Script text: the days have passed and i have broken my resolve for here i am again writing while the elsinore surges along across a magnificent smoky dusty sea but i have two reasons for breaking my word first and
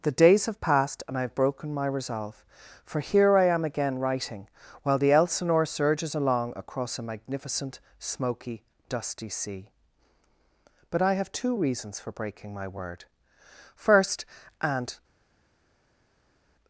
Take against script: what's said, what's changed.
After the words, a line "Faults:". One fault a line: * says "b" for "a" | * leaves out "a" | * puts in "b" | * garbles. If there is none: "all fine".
the days have passed and i have broken my resolve for here i am again writing while the elsinore surges along across a magnificent smoky dusty sea but i have two reasons for breaking my word first and
Faults:
all fine